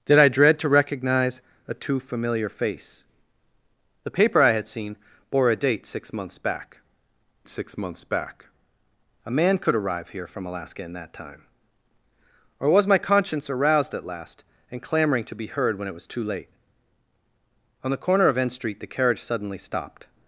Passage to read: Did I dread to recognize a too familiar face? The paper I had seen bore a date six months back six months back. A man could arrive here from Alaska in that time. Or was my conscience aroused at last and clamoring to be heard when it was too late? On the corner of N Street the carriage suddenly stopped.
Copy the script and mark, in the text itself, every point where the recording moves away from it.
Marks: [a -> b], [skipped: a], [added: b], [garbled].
Did I dread to recognize a too familiar face? The paper I had seen bore a date six months back six months back. A man could arrive here from Alaska in that time. Or was my conscience aroused at last and clamoring to be heard when it was too late? On the corner of N Street the carriage suddenly stopped.